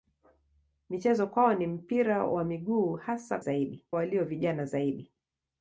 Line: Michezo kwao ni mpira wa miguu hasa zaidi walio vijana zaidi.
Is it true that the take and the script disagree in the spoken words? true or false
false